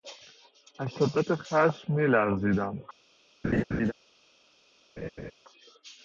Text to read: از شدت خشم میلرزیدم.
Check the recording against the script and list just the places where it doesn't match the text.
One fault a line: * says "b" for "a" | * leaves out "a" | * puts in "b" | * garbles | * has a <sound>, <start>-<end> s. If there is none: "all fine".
* has a laugh, 3.4-3.9 s
* has a laugh, 5.0-5.3 s